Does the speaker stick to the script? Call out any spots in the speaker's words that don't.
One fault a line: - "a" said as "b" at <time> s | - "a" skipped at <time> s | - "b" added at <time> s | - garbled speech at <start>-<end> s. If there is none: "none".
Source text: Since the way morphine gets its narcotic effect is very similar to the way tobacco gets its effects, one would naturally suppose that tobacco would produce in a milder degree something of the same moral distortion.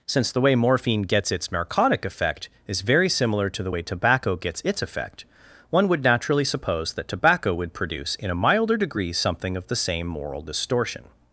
- "effects" said as "effect" at 4.8 s